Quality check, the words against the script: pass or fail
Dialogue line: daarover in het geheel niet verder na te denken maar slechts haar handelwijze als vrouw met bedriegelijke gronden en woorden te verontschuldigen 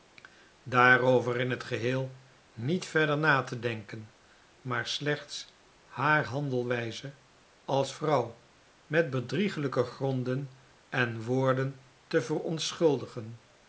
pass